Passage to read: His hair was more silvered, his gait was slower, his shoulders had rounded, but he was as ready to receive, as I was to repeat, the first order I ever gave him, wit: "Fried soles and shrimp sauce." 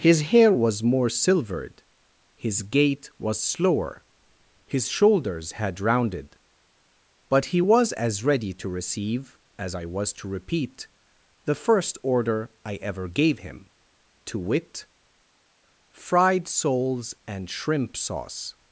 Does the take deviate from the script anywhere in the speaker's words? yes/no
yes